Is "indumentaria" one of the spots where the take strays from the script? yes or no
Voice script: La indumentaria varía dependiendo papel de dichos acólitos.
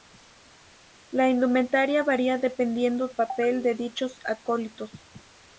no